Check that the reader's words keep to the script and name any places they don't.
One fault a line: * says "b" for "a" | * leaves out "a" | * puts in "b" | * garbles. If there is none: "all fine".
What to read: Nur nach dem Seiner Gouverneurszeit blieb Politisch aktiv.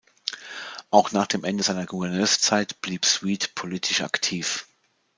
* says "Auch" for "Nur"
* puts in "Ende"
* puts in "Sweet"